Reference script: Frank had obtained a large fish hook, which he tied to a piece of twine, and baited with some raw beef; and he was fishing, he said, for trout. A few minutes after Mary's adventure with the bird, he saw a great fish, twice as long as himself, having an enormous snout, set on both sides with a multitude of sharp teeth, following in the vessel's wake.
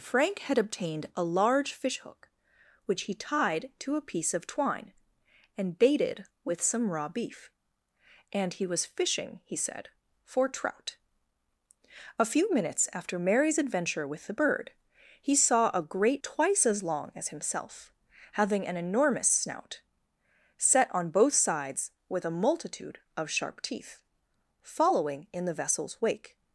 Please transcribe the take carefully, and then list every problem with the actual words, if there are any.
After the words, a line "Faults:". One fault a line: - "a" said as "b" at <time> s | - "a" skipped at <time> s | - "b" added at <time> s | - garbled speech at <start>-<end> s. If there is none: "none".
Frank had obtained a large fish hook, which he tied to a piece of twine, and baited with some raw beef; and he was fishing, he said, for trout. A few minutes after Mary's adventure with the bird, he saw a great twice as long as himself, having an enormous snout, set on both sides with a multitude of sharp teeth, following in the vessel's wake.
Faults:
- "fish" skipped at 16.2 s